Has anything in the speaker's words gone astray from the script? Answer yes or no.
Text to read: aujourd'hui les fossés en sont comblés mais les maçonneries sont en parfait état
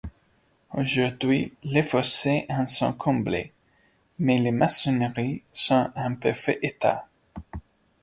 no